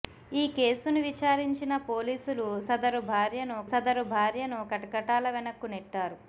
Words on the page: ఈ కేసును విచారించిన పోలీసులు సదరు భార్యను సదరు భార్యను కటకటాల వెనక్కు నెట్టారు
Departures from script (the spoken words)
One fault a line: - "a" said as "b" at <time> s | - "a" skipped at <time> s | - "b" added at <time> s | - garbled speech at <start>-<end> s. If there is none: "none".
none